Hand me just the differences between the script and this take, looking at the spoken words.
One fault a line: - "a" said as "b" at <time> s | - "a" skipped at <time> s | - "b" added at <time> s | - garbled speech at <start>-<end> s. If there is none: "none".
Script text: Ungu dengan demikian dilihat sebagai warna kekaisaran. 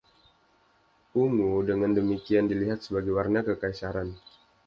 none